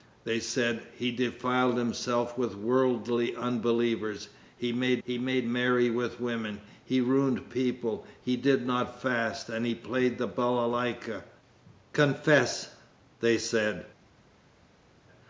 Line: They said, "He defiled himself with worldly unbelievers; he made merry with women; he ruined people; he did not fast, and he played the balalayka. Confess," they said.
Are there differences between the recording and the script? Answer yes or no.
yes